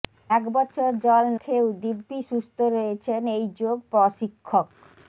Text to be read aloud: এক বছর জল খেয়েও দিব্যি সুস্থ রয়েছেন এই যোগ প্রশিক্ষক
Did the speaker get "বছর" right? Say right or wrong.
right